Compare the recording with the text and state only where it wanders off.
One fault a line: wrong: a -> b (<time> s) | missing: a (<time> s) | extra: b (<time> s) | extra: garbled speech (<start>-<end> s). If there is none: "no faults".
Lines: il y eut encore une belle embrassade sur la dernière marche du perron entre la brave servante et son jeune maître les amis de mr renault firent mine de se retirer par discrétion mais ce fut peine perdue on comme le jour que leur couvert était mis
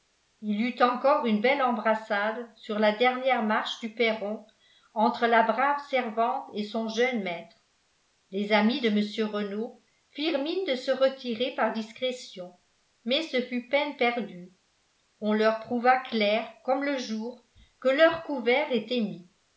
extra: leur prouva clair (15.3 s)